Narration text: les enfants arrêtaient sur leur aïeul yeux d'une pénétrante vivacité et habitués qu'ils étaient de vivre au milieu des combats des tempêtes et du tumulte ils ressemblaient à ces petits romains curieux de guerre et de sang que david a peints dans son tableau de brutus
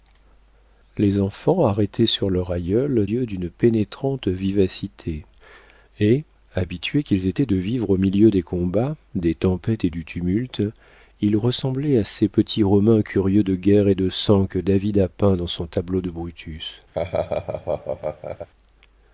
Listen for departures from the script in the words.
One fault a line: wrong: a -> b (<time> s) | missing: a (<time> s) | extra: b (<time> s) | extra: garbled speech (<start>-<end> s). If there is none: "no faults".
no faults